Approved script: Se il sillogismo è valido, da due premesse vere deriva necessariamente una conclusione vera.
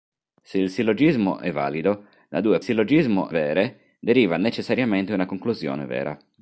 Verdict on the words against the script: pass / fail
fail